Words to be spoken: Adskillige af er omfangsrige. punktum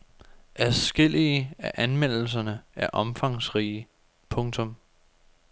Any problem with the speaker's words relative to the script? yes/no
yes